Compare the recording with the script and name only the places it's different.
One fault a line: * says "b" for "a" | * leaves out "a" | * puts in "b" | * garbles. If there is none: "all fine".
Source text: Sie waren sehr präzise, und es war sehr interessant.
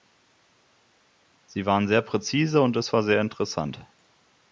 all fine